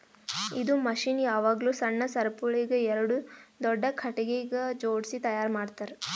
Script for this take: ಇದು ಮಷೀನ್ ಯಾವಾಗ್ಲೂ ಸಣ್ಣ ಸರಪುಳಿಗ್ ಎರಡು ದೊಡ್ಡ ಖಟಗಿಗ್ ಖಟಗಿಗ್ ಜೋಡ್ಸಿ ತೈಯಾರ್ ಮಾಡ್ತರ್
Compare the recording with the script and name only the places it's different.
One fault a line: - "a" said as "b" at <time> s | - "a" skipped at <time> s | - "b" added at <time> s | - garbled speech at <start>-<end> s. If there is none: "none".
- "ಖಟಗಿಗ್" skipped at 4.5 s